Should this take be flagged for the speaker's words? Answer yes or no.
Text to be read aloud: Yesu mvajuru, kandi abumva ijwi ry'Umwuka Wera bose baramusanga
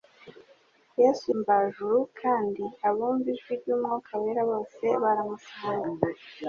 no